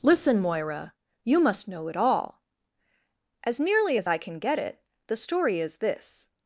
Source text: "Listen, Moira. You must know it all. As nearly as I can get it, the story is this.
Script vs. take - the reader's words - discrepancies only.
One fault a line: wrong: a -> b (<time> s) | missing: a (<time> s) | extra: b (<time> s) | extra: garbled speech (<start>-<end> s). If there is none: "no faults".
no faults